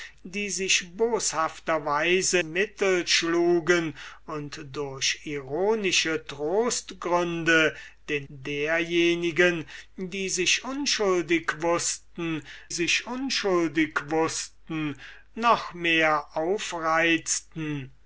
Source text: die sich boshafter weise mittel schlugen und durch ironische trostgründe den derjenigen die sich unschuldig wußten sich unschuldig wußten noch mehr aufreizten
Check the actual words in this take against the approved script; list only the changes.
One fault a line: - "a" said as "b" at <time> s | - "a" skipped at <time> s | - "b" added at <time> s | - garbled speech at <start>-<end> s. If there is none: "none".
none